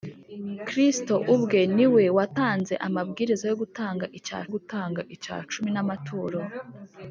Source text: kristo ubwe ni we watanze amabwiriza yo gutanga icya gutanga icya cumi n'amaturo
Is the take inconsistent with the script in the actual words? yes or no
no